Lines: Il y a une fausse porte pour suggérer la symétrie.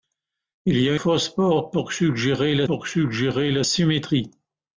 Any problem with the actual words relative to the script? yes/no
yes